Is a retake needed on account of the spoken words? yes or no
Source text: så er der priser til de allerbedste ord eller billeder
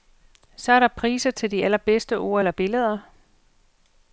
no